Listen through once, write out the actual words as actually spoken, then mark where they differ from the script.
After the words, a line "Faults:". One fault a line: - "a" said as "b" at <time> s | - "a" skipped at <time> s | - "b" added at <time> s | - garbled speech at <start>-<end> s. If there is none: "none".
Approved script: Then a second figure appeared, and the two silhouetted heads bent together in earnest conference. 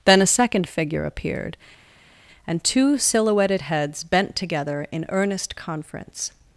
Then a second figure appeared, and two silhouetted heads bent together in earnest conference.
Faults:
- "the" skipped at 2.6 s